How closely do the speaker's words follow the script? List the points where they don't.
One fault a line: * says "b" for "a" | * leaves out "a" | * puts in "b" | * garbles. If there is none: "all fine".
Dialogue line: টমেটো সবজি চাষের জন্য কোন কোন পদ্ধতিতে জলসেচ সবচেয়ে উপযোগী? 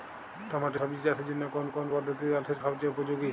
all fine